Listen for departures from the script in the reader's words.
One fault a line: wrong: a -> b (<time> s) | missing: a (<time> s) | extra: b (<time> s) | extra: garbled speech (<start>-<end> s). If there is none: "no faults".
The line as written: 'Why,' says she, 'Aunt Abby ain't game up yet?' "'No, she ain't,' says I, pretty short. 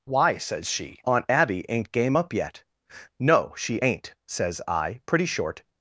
no faults